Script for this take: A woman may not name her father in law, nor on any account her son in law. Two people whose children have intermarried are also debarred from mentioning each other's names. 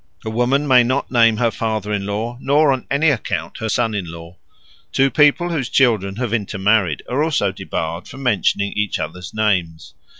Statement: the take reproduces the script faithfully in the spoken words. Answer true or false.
true